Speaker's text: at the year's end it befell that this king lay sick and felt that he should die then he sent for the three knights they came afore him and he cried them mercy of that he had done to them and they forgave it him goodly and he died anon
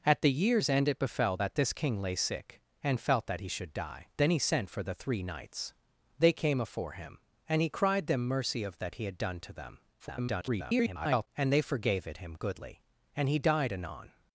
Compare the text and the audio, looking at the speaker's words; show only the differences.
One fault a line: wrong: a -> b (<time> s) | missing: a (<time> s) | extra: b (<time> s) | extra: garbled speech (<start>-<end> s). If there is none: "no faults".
extra: garbled speech (10.0-11.3 s)